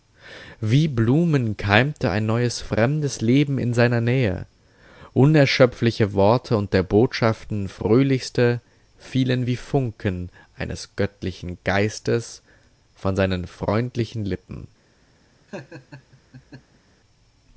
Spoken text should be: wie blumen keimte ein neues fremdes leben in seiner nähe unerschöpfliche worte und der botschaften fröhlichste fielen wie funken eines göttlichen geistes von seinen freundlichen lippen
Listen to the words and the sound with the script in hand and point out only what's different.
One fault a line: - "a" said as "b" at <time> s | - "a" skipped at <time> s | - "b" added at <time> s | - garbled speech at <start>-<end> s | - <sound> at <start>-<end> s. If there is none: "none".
- laugh at 15.5-16.8 s